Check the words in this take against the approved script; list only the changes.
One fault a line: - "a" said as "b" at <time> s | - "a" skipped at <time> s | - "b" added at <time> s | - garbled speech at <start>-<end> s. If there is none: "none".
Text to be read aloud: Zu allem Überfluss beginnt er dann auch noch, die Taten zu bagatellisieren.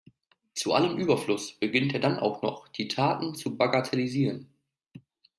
none